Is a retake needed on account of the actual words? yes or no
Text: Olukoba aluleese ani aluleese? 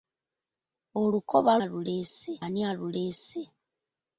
no